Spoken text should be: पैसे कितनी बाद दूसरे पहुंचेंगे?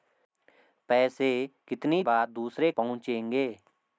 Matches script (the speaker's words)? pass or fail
pass